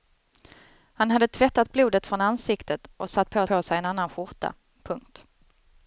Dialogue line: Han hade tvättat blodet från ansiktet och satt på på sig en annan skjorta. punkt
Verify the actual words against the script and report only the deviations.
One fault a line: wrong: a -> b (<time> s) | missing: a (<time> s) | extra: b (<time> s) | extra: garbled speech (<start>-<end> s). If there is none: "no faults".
no faults